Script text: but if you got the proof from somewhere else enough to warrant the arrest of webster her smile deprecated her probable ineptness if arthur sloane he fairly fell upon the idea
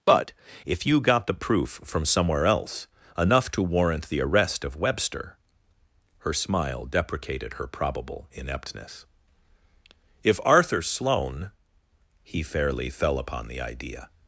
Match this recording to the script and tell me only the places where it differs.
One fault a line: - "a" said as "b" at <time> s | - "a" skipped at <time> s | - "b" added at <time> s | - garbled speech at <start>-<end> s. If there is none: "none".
none